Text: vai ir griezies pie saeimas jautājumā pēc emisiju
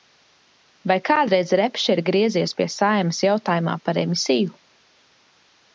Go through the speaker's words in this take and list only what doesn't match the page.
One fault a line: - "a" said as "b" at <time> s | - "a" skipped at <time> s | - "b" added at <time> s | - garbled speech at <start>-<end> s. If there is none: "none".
- "kādreiz repše" added at 1.1 s
- "pēc" said as "par" at 3.9 s